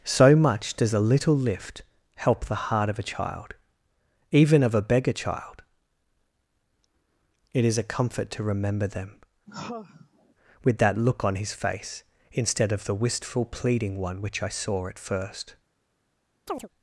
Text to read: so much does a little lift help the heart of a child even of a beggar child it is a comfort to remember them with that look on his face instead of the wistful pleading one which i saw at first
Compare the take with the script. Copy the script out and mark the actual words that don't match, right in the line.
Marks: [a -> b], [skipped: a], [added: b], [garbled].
so much does a little lift help the heart of a child even of a beggar child it is a comfort to remember them with that look on his face instead of the wistful pleading one which i saw at first